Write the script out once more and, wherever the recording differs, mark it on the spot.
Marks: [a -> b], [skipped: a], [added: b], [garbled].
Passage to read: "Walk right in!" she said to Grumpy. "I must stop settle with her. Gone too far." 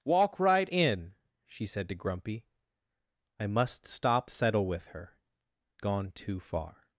"Walk right in!" she said to Grumpy. "I must stop settle with her. Gone too far."